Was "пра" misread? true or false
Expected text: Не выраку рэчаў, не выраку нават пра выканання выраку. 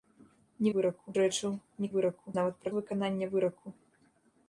false